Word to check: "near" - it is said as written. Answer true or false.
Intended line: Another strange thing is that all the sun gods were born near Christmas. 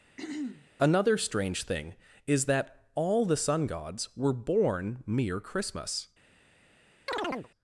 false